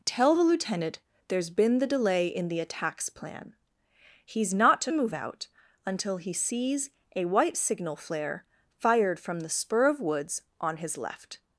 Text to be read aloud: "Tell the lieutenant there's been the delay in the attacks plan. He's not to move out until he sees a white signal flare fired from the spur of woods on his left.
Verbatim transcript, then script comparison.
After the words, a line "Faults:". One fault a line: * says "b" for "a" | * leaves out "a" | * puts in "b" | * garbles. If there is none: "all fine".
"Tell the lieutenant there's been the delay in the attacks plan. He's not to move out until he sees a white signal flare fired from the spur of woods on his left.
Faults:
all fine